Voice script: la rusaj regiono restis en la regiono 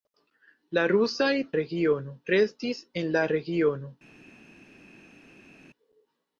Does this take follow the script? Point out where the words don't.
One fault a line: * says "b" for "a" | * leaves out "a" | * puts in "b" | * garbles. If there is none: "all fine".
all fine